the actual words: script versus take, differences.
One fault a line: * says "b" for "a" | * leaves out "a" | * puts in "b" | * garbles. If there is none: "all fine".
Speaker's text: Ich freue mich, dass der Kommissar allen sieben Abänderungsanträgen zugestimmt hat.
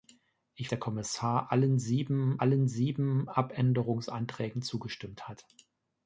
* says "der Kommissar allen sieben" for "freue mich dass der Kommissar"